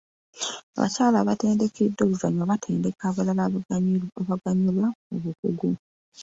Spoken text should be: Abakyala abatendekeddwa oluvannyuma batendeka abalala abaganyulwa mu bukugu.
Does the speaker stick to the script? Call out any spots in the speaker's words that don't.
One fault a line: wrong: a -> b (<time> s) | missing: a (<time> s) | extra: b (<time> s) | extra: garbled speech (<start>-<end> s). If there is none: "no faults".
no faults